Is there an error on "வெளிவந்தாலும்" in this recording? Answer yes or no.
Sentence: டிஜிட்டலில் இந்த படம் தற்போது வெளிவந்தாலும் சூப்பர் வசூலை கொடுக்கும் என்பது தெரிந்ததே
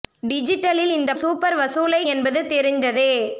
yes